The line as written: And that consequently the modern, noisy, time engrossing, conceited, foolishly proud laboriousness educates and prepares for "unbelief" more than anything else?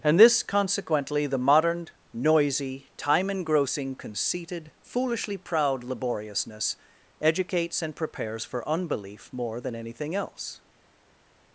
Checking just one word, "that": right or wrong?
wrong